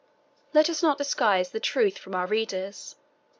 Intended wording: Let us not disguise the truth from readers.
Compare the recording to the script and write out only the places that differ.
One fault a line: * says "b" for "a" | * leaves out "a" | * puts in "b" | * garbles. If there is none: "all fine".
* puts in "our"